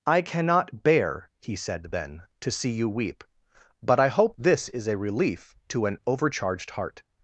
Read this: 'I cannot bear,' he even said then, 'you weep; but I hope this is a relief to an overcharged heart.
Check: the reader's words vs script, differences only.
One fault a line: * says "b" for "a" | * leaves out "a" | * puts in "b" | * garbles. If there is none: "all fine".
* leaves out "even"
* puts in "to see"